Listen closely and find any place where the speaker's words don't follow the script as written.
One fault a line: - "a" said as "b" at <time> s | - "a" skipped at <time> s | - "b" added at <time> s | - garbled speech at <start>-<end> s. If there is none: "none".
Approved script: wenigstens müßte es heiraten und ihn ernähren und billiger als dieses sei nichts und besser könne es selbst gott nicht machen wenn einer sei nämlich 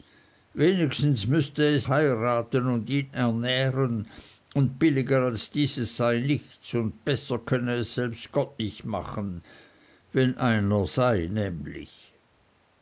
none